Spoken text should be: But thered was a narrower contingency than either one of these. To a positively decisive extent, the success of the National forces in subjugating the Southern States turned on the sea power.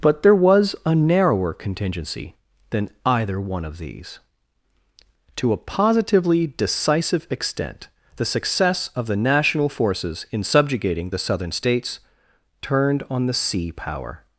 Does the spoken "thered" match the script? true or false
false